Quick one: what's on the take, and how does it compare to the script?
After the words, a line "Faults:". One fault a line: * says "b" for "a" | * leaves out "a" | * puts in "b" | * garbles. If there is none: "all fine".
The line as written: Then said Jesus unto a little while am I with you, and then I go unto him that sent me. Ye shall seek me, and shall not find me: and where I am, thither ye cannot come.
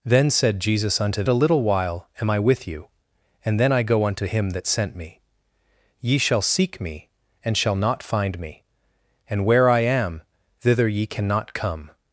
Then said Jesus unto a little while am I with you, and then I go unto him that sent me. Ye shall seek me, and shall not find me: and where I am, thither ye cannot come.
Faults:
all fine